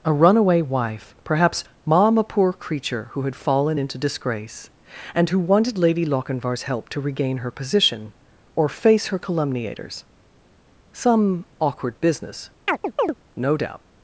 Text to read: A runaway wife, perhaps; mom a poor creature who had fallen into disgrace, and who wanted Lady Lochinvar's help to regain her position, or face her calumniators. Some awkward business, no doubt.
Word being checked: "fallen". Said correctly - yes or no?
yes